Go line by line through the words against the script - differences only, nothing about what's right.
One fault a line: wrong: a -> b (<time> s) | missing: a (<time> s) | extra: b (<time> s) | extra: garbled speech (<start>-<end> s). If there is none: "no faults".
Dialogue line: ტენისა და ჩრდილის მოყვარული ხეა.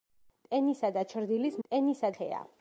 wrong: მოყვარული -> ტენისა (1.7 s)